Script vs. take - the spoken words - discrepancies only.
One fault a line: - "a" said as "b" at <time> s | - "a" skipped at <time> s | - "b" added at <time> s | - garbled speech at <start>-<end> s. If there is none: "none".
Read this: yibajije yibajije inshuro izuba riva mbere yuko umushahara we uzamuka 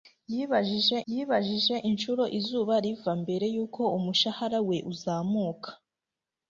none